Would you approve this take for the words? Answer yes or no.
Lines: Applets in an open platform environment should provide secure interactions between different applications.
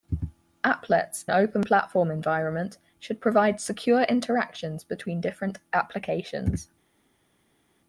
no